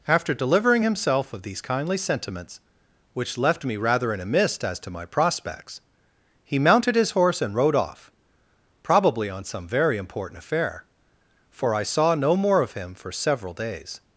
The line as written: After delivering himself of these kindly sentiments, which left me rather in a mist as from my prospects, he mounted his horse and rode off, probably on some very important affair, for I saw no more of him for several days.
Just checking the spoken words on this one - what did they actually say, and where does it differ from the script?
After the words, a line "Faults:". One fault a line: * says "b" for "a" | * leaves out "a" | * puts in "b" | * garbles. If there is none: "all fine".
After delivering himself of these kindly sentiments, which left me rather in a mist as to my prospects, he mounted his horse and rode off, probably on some very important affair, for I saw no more of him for several days.
Faults:
* says "to" for "from"